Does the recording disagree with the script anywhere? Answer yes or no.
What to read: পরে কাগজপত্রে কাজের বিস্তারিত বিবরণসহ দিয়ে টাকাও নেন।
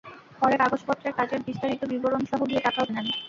no